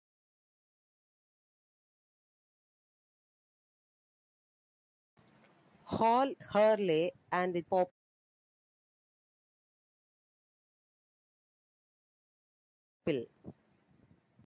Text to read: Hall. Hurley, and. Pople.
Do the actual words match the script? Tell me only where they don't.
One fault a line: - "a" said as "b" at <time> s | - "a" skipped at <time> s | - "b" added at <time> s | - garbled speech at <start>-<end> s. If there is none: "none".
none